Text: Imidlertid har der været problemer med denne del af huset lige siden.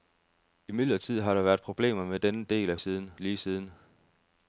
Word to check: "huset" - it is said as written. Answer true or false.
false